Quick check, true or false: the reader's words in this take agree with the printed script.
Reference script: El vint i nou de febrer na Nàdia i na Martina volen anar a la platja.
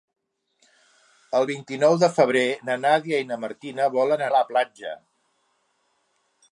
false